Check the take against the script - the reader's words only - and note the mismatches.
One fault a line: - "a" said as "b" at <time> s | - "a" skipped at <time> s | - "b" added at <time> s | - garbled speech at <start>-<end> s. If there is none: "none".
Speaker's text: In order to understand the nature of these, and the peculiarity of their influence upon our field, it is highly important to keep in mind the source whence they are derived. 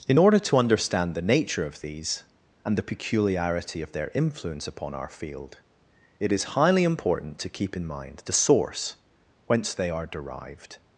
none